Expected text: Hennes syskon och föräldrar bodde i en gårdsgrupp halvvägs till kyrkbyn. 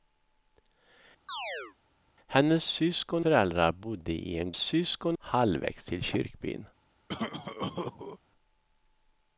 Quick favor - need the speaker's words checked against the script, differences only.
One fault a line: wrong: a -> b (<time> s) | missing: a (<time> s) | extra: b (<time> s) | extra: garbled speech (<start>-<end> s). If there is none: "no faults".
missing: och (3.3 s)
wrong: gårdsgrupp -> syskon (4.6 s)